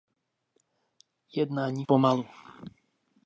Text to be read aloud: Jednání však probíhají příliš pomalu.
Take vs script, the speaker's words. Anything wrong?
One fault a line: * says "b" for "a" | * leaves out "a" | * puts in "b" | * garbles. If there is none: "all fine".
* leaves out "však probíhají příliš"